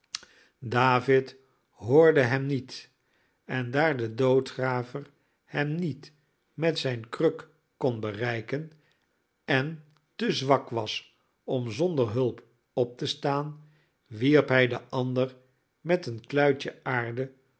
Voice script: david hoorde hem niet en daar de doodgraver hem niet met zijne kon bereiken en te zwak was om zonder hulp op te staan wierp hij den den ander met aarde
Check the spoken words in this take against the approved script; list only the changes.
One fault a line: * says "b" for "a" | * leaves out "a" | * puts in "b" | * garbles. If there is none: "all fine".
* puts in "kruk"
* leaves out "den"
* puts in "een kluitje"